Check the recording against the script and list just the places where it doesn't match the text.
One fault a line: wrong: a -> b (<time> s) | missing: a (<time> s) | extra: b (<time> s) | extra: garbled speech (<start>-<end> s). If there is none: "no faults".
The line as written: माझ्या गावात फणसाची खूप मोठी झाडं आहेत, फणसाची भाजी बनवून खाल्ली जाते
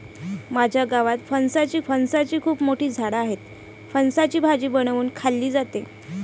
extra: फणसाची (1.8 s)